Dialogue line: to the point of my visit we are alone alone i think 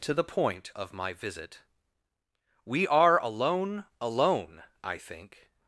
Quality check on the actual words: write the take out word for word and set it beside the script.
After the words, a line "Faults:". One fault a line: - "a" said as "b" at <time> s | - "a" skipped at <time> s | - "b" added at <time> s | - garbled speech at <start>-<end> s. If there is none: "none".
to the point of my visit we are alone alone i think
Faults:
none